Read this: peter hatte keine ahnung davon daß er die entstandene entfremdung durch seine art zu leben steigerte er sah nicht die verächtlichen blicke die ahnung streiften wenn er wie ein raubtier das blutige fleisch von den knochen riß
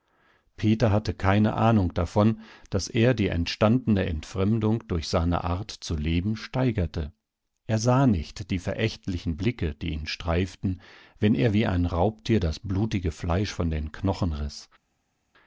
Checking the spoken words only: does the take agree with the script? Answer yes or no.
no